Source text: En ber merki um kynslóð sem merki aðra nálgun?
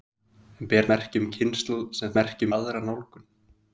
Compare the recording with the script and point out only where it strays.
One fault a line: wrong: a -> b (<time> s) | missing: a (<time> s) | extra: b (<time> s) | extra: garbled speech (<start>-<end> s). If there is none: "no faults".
no faults